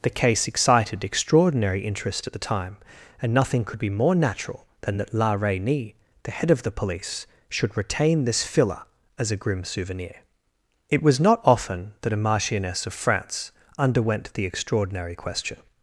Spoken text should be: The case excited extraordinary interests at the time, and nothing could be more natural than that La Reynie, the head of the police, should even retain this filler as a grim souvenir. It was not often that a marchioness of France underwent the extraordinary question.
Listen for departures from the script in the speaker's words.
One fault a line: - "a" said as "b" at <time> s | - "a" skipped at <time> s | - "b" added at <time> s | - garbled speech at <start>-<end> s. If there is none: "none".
- "interests" said as "interest" at 1.9 s
- "even" skipped at 7.8 s